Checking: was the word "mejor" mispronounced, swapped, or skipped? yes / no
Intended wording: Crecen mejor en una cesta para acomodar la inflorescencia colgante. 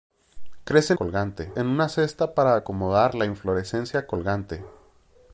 yes